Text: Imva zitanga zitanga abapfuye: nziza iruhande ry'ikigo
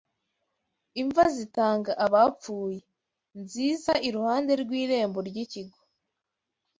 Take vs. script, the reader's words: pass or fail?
fail